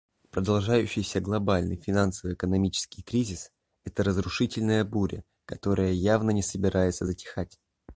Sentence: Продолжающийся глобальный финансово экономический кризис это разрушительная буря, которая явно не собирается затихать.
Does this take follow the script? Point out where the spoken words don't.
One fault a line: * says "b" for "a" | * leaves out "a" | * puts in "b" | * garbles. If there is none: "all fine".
all fine